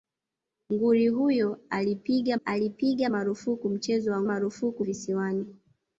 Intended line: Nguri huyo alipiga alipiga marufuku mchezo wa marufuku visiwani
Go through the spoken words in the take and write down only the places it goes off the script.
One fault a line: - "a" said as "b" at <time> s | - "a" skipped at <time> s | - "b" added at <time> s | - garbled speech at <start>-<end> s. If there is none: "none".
none